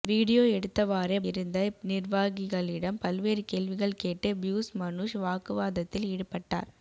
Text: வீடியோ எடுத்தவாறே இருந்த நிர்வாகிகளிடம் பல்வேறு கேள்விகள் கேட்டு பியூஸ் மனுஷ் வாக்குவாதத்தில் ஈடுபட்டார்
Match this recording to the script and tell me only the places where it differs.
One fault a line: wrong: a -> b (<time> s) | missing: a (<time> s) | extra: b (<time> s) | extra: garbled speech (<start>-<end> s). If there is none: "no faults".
no faults